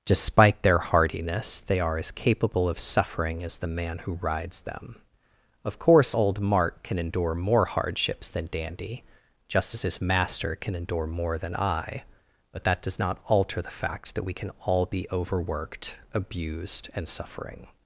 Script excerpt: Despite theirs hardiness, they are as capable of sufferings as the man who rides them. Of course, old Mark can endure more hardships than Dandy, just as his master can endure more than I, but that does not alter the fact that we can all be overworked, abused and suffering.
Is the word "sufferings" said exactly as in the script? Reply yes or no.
no